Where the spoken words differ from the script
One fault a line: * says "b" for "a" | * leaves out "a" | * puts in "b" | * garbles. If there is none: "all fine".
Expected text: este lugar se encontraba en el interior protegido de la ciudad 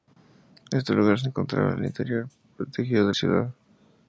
* leaves out "la"